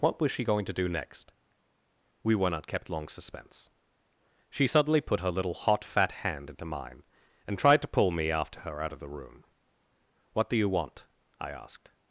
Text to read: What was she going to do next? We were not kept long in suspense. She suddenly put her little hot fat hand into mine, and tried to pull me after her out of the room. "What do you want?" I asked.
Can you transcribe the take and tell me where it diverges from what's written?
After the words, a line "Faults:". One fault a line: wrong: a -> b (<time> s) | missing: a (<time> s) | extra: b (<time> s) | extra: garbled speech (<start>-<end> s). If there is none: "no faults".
What was she going to do next? We were not kept long suspense. She suddenly put her little hot fat hand into mine, and tried to pull me after her out of the room. "What do you want?" I asked.
Faults:
missing: in (3.1 s)